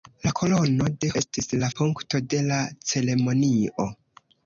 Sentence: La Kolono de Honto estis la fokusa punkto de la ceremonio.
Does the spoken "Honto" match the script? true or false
false